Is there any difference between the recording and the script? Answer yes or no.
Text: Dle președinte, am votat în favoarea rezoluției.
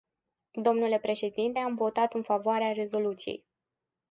no